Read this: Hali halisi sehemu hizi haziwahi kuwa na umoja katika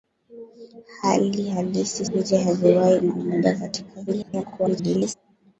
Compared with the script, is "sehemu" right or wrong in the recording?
wrong